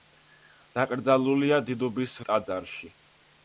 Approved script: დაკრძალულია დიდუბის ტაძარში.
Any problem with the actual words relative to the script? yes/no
no